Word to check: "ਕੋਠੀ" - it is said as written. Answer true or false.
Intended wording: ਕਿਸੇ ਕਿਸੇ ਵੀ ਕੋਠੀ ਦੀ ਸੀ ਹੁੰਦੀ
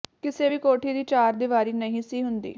true